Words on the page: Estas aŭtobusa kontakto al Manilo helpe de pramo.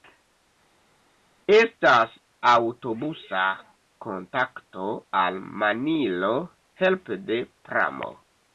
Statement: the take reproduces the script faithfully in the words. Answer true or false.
true